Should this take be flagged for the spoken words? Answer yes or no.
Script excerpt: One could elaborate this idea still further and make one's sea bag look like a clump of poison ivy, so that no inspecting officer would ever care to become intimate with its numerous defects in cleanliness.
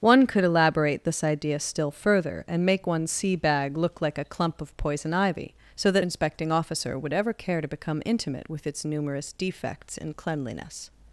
yes